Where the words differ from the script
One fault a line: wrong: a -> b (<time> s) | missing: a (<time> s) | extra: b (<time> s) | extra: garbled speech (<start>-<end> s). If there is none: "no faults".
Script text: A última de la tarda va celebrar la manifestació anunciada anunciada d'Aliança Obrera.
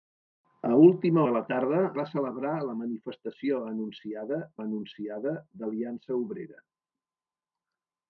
no faults